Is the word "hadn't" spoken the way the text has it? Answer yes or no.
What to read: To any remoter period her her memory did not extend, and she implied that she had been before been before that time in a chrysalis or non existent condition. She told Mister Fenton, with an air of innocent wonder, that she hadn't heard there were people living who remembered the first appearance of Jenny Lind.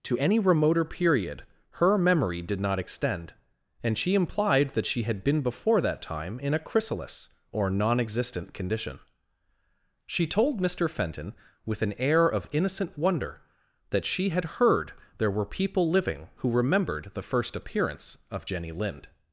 no